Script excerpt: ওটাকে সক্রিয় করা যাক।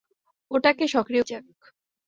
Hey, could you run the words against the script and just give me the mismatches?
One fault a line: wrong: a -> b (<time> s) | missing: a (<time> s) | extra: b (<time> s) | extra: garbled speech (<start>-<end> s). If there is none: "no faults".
missing: করা (1.2 s)